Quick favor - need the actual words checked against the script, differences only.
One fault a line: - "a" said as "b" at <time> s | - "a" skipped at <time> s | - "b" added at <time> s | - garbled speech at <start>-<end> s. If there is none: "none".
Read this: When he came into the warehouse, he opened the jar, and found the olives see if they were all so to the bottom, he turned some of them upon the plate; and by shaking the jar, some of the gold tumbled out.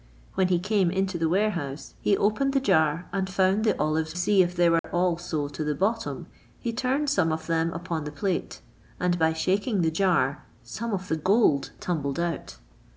none